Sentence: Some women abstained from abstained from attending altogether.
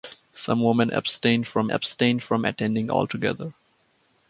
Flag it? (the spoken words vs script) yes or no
no